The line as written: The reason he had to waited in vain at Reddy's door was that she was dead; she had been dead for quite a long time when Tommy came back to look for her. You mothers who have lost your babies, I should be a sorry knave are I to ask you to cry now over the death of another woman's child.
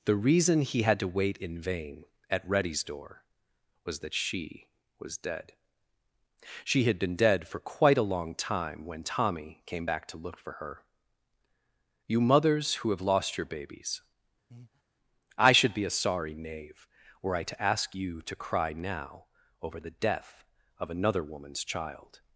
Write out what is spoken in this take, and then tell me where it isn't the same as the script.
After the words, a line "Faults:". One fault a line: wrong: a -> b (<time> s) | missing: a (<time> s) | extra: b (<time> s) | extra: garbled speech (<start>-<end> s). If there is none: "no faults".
The reason he had to wait in vain at Reddy's door was that she was dead; she had been dead for quite a long time when Tommy came back to look for her. You mothers who have lost your babies, I should be a sorry knave were I to ask you to cry now over the death of another woman's child.
Faults:
wrong: waited -> wait (1.1 s)
wrong: are -> were (17.2 s)